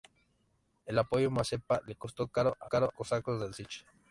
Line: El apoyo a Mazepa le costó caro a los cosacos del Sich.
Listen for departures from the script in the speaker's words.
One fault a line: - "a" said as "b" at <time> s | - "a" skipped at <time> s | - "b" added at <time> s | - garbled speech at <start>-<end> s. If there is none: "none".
- "los" said as "caro" at 2.7 s